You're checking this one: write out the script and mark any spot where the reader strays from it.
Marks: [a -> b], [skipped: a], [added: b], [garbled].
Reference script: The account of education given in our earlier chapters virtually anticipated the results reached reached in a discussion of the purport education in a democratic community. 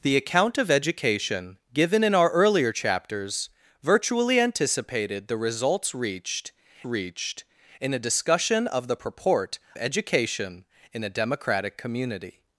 The account of education given in our earlier chapters virtually anticipated the results reached reached in a discussion of the purport education in a democratic community.